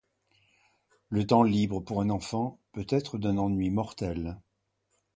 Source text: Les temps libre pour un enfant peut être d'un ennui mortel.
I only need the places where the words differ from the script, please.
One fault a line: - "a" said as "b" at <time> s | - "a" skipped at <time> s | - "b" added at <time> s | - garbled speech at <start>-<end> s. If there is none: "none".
- "Les" said as "Le" at 1.1 s